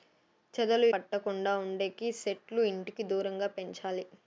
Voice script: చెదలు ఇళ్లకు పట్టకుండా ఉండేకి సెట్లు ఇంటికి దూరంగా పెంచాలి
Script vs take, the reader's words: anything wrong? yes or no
yes